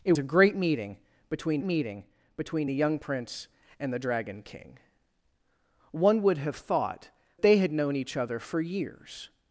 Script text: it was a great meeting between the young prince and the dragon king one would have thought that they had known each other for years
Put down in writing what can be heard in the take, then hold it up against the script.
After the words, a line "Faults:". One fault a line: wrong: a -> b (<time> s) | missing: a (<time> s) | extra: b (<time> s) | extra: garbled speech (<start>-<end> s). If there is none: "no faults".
it a great meeting between meeting between the young prince and the dragon king one would have thought they had known each other for years
Faults:
missing: was (0.1 s)
extra: meeting between (1.6 s)
missing: that (7.1 s)